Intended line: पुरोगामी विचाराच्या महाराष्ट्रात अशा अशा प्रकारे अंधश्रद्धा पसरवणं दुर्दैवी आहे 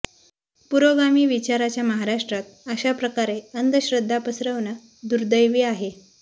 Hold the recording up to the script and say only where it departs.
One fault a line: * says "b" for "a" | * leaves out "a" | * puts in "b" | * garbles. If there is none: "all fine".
* leaves out "अशा"